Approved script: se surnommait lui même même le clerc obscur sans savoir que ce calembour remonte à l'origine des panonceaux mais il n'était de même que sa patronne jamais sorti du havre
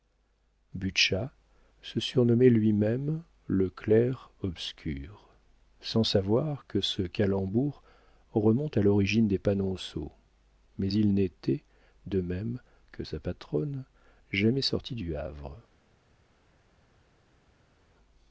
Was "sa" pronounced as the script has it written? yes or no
yes